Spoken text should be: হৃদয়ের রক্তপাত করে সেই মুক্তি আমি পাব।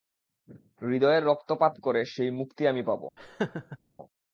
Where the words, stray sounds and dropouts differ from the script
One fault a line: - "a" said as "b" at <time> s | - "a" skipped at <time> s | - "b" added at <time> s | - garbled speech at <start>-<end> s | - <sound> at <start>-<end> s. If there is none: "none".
- laugh at 3.2-3.8 s